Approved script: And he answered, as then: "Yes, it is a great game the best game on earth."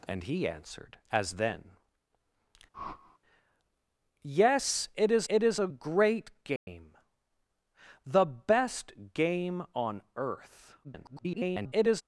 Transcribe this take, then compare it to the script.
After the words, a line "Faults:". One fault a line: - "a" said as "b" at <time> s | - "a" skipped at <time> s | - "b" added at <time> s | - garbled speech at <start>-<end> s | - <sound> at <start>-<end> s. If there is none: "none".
And he answered, as then: "Yes, it is it is a great game the best game on earth." [garbled]
Faults:
- whoosh at 2.7-3.2 s
- "it is" added at 5.3 s
- dropout at 6.6-6.7 s
- garbled speech at 10.8-12.0 s